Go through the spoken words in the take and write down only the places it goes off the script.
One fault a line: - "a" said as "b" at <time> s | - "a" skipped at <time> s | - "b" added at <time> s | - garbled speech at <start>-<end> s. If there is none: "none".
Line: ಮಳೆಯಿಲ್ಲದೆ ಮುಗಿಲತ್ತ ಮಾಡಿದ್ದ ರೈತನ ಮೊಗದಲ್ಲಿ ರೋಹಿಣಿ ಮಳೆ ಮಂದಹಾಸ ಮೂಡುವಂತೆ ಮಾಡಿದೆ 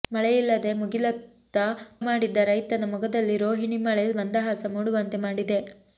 none